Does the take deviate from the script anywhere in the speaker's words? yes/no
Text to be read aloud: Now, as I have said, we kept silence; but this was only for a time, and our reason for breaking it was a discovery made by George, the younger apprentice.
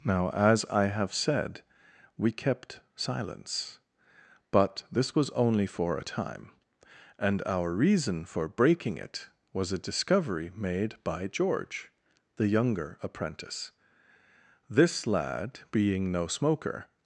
yes